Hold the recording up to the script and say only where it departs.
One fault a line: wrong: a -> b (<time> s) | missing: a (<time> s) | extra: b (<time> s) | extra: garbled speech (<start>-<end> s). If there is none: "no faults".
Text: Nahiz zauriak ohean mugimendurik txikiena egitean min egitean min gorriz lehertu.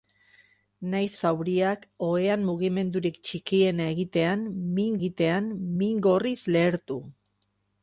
no faults